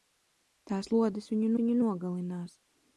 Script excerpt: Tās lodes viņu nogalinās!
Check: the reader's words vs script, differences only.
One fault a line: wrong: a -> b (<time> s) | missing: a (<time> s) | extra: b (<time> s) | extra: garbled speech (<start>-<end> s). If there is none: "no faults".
extra: viņu (1.6 s)